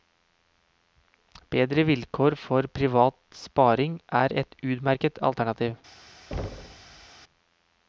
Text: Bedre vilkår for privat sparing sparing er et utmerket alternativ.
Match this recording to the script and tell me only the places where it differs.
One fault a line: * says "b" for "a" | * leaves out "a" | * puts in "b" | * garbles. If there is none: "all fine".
* leaves out "sparing"